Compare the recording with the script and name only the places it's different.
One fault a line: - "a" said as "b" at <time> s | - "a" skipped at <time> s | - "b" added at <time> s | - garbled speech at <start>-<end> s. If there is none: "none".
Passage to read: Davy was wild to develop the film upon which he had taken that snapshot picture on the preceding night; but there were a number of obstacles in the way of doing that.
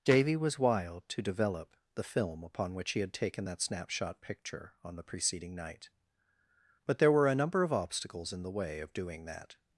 none